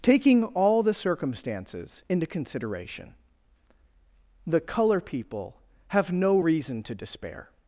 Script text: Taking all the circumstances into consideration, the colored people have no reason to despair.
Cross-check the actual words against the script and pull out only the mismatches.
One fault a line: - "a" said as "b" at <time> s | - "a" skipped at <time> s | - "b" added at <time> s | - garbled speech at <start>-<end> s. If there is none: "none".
- "colored" said as "color" at 4.6 s